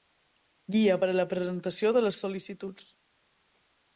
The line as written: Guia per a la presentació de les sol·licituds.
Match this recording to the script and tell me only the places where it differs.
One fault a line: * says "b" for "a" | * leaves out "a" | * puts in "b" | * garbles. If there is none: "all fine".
all fine